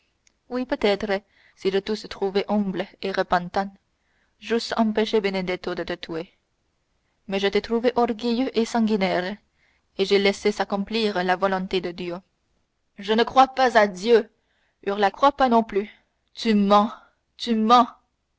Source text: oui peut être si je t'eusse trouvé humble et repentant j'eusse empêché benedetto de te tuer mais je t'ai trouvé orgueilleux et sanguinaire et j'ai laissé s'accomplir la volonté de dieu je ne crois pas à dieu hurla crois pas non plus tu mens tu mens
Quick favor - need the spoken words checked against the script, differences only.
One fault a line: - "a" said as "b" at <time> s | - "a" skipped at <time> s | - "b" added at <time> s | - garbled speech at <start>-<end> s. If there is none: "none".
none